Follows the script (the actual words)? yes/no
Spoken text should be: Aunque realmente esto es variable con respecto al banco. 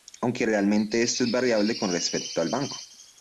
yes